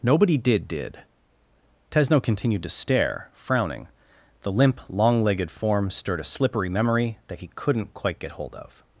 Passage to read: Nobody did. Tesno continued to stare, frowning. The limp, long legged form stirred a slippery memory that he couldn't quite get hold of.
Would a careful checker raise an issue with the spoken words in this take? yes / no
yes